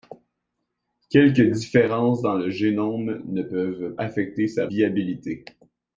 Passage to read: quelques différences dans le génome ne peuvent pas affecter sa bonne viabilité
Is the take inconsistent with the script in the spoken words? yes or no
yes